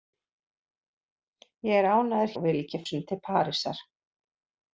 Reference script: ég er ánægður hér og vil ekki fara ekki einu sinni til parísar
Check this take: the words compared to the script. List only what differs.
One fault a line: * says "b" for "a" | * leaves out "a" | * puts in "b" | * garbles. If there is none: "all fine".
* leaves out "hér"
* leaves out "fara ekki einu"